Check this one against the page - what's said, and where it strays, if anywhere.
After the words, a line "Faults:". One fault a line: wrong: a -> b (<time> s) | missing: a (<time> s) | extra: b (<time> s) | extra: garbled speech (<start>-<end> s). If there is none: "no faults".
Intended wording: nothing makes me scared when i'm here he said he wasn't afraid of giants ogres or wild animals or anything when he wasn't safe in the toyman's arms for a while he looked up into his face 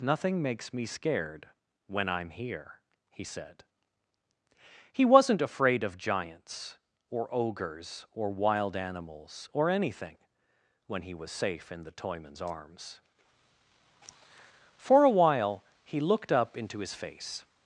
nothing makes me scared when i'm here he said he wasn't afraid of giants or ogres or wild animals or anything when he was safe in the toyman's arms for a while he looked up into his face
Faults:
extra: or (7.1 s)
wrong: wasn't -> was (11.1 s)